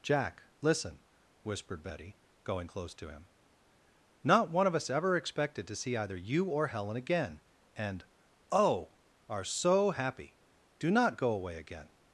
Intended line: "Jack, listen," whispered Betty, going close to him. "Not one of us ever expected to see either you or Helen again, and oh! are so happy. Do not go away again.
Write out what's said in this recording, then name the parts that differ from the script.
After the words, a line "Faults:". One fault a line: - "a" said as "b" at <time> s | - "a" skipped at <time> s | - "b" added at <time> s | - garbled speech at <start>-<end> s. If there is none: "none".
"Jack, listen," whispered Betty, going close to him. "Not one of us ever expected to see either you or Helen again, and oh! are so happy. Do not go away again.
Faults:
none